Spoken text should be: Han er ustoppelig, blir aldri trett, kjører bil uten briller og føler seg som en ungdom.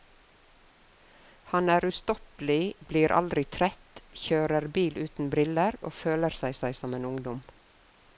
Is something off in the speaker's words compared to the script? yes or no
yes